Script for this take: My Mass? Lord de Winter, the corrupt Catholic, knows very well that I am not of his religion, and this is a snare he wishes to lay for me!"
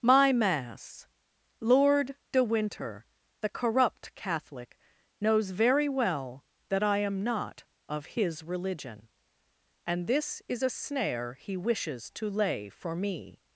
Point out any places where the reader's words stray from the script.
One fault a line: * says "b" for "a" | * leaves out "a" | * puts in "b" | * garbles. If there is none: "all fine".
all fine